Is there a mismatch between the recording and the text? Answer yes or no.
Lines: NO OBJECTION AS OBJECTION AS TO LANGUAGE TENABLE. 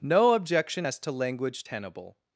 yes